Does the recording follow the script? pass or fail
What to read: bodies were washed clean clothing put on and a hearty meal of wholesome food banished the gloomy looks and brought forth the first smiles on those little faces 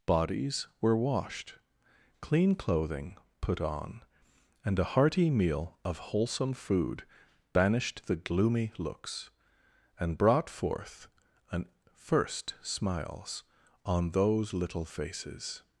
fail